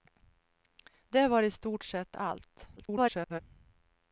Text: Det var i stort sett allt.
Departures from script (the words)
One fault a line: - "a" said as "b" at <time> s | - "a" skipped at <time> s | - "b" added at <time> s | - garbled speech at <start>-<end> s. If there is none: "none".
- garbled speech at 2.8-3.4 s